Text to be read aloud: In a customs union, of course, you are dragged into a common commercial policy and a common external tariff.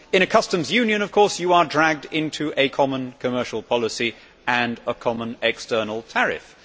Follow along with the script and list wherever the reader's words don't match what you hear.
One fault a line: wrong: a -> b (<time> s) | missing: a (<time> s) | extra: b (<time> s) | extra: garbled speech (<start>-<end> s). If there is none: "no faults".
no faults